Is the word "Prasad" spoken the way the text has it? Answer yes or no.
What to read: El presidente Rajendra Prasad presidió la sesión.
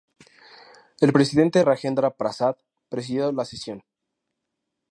yes